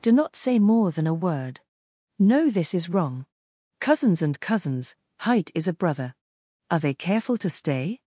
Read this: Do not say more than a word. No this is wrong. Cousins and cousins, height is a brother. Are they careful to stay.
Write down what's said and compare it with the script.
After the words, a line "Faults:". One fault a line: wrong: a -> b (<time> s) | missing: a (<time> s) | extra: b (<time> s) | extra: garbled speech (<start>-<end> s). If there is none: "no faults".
Do not say more than a word. No this is wrong. Cousins and cousins, height is a brother. Are they careful to stay.
Faults:
no faults